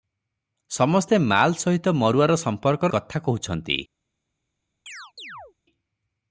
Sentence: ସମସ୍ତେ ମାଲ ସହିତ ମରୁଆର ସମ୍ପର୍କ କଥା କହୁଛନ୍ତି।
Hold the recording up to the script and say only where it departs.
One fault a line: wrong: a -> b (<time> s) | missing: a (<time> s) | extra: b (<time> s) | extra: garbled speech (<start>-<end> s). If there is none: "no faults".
no faults